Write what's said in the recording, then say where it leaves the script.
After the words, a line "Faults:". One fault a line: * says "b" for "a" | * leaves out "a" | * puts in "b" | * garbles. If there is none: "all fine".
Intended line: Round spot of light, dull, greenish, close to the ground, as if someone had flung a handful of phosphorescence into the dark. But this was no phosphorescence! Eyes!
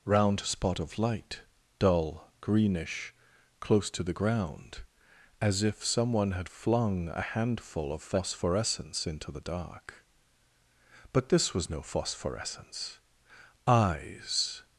Round spot of light, dull, greenish, close to the ground, as if someone had flung a handful of phosphorescence into the dark. But this was no phosphorescence! Eyes!
Faults:
all fine